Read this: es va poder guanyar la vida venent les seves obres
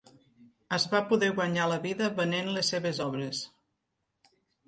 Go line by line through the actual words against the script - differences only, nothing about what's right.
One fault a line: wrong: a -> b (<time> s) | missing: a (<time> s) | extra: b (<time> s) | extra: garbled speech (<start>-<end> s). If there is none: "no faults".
no faults